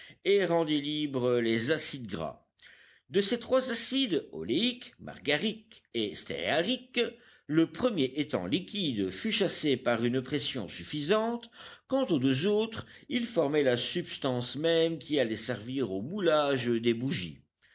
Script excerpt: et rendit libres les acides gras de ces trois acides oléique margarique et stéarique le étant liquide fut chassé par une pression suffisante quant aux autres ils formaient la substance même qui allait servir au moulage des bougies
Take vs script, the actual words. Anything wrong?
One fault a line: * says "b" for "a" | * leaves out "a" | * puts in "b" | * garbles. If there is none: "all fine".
* puts in "premier"
* puts in "deux"